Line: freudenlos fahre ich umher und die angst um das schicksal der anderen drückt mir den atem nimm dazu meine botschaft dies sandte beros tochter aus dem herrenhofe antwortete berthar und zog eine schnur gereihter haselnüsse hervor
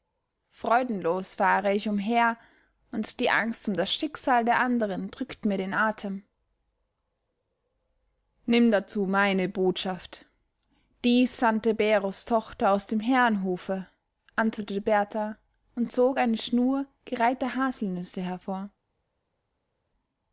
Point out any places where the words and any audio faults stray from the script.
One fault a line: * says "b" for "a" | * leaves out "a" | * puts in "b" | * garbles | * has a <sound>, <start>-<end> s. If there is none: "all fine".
all fine